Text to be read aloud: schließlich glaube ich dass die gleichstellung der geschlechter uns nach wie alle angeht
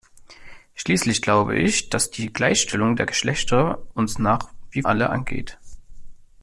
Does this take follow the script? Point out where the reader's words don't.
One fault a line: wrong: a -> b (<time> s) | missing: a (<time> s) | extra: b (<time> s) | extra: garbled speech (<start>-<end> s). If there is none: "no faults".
no faults